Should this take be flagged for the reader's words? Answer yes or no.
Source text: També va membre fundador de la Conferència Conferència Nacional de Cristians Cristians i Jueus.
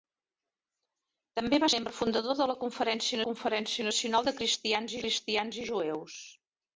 no